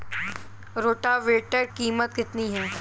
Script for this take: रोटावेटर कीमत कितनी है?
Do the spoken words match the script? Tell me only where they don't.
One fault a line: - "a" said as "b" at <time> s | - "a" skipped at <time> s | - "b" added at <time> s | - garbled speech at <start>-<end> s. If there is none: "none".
none